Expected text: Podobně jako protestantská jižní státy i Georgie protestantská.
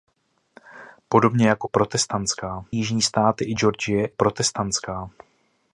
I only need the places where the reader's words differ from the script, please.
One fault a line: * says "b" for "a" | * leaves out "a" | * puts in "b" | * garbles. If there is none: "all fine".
all fine